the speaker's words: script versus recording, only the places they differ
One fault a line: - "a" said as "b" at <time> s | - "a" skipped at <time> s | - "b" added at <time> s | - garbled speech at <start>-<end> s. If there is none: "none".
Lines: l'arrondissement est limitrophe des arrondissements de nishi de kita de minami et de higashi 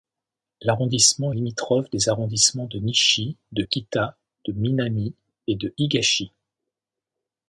none